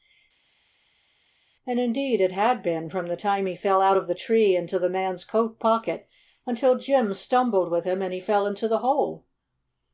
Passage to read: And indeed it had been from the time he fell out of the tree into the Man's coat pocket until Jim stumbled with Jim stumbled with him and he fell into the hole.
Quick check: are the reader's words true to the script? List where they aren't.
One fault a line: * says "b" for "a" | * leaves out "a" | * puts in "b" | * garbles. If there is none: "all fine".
* leaves out "Jim stumbled with"